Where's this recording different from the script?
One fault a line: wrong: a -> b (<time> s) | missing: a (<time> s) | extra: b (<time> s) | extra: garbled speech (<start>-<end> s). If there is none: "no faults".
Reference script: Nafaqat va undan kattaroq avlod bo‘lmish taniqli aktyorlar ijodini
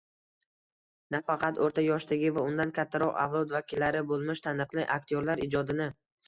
extra: o‘rta yoshdagi (1.6 s)
extra: vakillari (3.6 s)